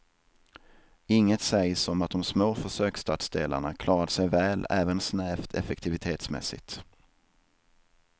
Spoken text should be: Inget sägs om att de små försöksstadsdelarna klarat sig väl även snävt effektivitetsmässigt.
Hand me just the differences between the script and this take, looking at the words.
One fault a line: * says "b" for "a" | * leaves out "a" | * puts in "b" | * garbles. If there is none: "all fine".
all fine